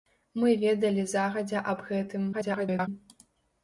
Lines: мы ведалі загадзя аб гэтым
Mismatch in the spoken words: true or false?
true